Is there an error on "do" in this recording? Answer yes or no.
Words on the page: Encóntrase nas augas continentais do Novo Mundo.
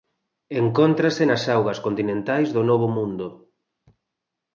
no